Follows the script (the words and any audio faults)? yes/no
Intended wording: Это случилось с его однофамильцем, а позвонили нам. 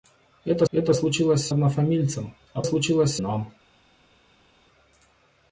no